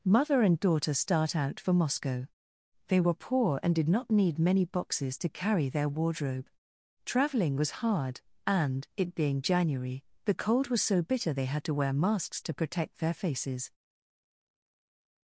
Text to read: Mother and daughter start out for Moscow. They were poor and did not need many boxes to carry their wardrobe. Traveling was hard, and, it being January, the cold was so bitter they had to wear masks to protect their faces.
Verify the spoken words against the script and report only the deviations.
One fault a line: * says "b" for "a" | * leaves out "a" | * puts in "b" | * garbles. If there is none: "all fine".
all fine